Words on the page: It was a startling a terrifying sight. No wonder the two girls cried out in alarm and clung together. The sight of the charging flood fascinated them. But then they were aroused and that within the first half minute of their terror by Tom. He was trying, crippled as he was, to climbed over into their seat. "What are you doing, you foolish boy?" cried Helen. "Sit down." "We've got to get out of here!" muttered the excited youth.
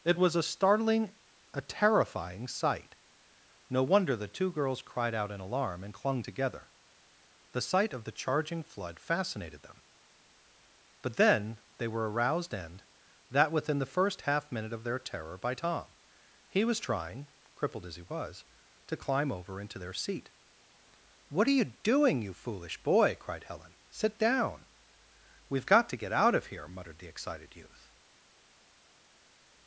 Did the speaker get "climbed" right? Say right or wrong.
wrong